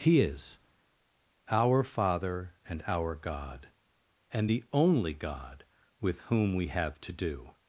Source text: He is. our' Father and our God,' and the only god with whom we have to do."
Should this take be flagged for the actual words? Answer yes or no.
no